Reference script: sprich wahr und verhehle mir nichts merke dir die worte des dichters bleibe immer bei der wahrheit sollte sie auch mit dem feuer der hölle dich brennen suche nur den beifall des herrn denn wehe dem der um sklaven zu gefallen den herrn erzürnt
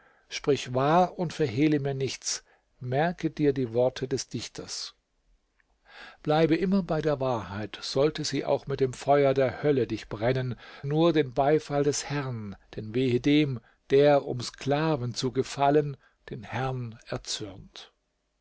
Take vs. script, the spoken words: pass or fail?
fail